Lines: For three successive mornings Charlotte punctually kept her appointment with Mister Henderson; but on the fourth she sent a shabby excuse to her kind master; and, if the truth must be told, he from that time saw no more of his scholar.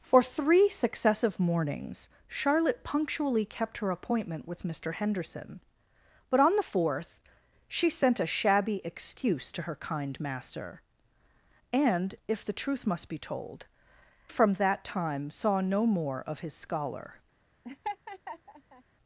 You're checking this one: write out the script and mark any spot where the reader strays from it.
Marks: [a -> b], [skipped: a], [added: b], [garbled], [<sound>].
For three successive mornings Charlotte punctually kept her appointment with Mister Henderson; but on the fourth she sent a shabby excuse to her kind master; and, if the truth must be told, [skipped: he] from that time saw no more of his scholar. [laugh]